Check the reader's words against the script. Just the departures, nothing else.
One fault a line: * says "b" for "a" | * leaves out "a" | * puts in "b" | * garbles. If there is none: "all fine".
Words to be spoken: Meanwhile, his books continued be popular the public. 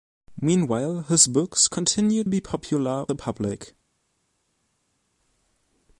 all fine